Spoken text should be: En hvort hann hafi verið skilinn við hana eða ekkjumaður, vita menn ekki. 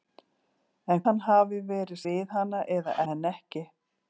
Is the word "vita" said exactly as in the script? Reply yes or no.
no